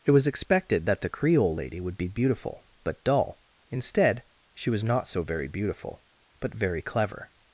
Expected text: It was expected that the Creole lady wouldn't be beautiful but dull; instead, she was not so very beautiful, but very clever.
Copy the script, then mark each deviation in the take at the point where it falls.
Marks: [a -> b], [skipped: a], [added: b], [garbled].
It was expected that the Creole lady [wouldn't -> would] be beautiful but dull; instead, she was not so very beautiful, but very clever.